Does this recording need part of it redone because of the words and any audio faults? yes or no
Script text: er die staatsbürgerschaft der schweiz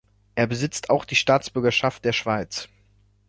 yes